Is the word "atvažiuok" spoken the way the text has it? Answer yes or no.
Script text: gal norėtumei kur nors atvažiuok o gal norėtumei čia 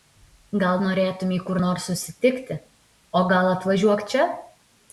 no